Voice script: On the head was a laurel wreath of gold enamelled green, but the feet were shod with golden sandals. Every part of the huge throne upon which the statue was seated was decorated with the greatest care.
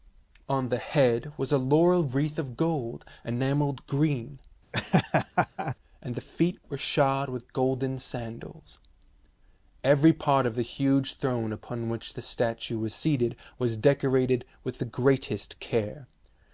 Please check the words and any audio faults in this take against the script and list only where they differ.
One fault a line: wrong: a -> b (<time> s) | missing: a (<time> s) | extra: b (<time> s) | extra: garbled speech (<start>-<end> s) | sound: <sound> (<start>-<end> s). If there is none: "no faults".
sound: laugh (4.7-5.8 s)
wrong: but -> and (6.0 s)